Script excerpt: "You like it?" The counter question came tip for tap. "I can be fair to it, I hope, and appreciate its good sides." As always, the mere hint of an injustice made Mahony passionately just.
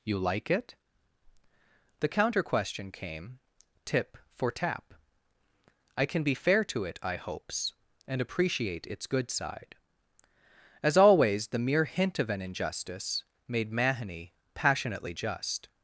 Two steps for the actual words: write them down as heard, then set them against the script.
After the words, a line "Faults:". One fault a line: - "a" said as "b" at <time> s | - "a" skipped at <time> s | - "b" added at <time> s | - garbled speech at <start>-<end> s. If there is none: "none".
"You like it?" The counter question came tip for tap. "I can be fair to it, I hopes, and appreciate its good side." As always, the mere hint of an injustice made Mahony passionately just.
Faults:
- "hope" said as "hopes" at 7.2 s
- "sides" said as "side" at 9.3 s